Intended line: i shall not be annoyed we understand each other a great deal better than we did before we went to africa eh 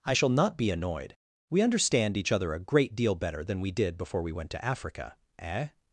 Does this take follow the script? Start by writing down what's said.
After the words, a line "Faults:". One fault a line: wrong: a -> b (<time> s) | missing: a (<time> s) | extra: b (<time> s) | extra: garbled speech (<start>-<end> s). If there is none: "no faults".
i shall not be annoyed we understand each other a great deal better than we did before we went to africa eh
Faults:
no faults